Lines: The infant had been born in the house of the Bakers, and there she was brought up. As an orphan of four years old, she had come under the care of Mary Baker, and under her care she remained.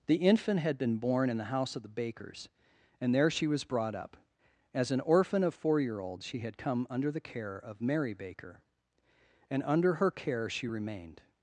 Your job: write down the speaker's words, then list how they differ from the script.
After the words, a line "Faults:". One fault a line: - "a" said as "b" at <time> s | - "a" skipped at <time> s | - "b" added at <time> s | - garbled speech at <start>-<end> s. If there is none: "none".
The infant had been born in the house of the Bakers, and there she was brought up. As an orphan of four year old, she had come under the care of Mary Baker, and under her care she remained.
Faults:
- "years" said as "year" at 5.8 s